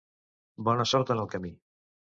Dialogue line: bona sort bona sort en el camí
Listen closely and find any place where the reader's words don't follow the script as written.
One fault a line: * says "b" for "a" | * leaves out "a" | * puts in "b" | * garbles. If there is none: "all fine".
* leaves out "bona sort"